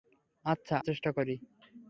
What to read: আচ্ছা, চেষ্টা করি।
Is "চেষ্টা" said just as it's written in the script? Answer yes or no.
yes